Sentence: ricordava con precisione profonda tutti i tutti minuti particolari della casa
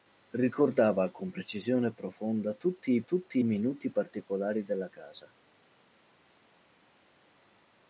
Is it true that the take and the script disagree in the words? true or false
false